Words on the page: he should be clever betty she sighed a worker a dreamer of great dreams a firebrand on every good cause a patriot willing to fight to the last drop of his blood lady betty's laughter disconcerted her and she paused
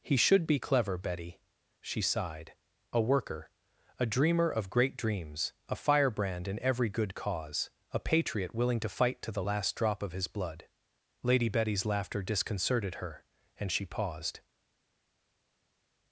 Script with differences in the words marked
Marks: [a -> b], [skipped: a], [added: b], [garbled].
he should be clever betty she sighed a worker a dreamer of great dreams a firebrand [on -> in] every good cause a patriot willing to fight to the last drop of his blood lady betty's laughter disconcerted her and she paused